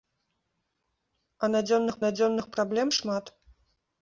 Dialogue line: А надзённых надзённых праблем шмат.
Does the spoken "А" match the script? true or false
true